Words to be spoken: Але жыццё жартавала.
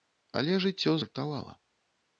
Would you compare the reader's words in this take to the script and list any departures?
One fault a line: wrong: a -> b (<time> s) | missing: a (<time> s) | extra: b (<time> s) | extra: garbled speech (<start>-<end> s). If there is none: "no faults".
no faults